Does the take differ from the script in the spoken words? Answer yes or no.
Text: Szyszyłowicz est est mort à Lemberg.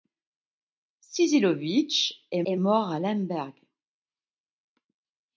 no